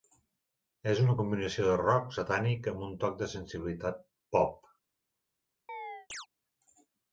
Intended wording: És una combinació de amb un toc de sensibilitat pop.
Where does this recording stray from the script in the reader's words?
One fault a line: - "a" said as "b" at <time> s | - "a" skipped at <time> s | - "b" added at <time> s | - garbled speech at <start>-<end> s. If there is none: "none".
- "rock satànic" added at 1.8 s